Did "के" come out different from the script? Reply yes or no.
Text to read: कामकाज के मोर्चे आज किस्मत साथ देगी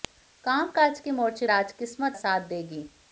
no